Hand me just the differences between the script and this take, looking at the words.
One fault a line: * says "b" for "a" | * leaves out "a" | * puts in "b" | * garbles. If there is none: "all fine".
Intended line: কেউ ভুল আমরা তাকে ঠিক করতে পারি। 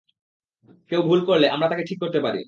* puts in "করলে"